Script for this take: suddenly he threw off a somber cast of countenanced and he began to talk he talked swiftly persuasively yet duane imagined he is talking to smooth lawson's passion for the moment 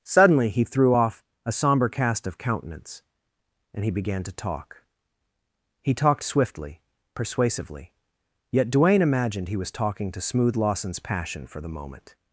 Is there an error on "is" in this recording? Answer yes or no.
yes